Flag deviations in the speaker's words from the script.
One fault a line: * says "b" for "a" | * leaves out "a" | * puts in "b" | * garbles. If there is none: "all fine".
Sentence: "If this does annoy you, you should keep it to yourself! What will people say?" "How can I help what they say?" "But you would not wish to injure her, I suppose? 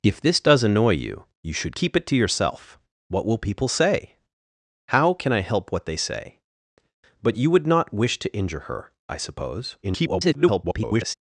* garbles